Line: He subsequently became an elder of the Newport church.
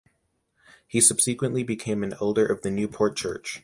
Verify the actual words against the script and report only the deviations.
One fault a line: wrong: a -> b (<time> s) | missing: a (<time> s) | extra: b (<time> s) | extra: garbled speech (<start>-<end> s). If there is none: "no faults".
no faults